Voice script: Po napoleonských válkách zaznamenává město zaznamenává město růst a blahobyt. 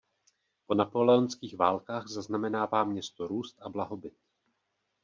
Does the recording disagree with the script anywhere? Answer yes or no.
yes